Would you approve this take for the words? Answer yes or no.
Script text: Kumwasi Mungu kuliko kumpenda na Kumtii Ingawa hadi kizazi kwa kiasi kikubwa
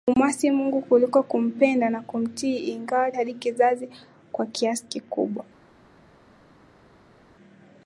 yes